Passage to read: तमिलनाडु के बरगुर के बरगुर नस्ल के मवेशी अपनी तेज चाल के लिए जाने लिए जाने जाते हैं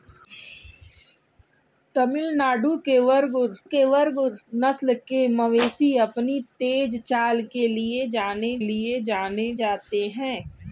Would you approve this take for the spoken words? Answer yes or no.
yes